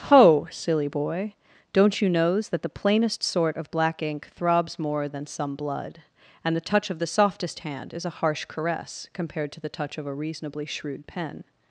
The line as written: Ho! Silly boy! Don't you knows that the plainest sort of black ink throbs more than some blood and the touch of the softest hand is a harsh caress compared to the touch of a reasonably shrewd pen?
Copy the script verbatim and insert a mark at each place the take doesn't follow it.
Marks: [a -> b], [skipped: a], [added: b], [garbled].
Ho! Silly boy! Don't you knows that the plainest sort of black ink throbs more than some blood and the touch of the softest hand is a harsh caress compared to the touch of a reasonably shrewd pen?